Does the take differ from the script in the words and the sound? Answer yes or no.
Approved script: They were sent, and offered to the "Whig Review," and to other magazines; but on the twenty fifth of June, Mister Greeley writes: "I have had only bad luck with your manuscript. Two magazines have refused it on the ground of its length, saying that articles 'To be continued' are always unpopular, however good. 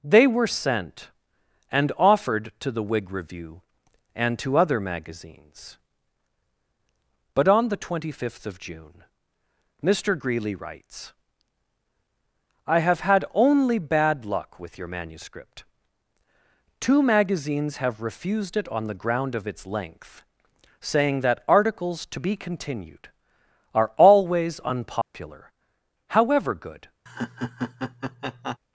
yes